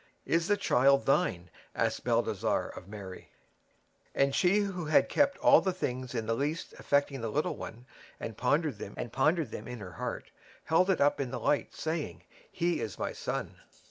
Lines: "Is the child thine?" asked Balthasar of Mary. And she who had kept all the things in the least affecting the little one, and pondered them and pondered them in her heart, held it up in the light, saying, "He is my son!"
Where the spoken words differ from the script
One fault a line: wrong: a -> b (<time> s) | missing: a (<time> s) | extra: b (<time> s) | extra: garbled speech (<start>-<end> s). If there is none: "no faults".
no faults